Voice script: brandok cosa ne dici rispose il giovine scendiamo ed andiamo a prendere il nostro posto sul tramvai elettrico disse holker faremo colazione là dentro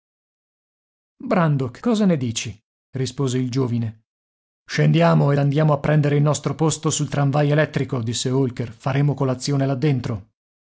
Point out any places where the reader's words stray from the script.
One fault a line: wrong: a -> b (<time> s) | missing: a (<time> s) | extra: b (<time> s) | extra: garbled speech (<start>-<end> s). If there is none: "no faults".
no faults